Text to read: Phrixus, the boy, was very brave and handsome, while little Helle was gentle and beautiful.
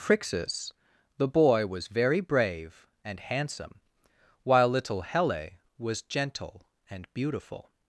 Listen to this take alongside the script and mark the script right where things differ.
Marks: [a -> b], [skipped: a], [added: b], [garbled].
Phrixus, the boy, was very brave and handsome, while little Helle was gentle and beautiful.